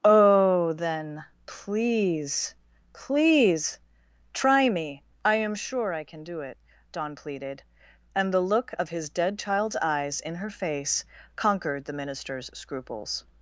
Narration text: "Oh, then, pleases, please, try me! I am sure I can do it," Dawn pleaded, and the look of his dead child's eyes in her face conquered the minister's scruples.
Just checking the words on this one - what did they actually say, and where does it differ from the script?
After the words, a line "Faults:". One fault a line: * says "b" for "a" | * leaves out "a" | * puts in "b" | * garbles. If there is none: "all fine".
"Oh, then, please, please, try me! I am sure I can do it," Dawn pleaded, and the look of his dead child's eyes in her face conquered the minister's scruples.
Faults:
* says "please" for "pleases"